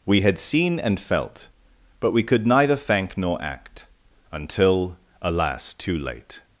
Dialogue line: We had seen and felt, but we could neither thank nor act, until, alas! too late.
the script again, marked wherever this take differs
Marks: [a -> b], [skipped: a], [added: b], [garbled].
We had seen and felt, but we could neither thank nor act, until, alas! too late.